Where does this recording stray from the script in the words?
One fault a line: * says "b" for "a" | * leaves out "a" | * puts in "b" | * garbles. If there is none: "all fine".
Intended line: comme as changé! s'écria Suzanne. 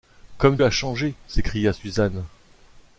all fine